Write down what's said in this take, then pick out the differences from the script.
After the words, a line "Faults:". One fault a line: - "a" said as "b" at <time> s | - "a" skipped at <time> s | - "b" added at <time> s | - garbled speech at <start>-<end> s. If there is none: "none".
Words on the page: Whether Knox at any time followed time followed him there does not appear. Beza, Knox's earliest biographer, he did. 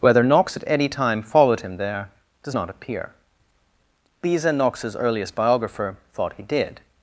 Whether Knox at any time followed him there does not appear. Beza, Knox's earliest biographer, thought he did.
Faults:
- "time followed" skipped at 1.6 s
- "thought" added at 6.1 s